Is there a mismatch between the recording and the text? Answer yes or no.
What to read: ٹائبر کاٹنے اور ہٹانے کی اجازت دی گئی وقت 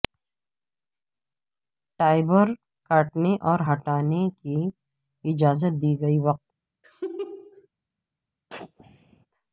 no